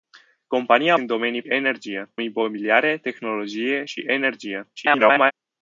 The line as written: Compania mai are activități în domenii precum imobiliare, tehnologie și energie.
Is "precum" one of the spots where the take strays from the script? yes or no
yes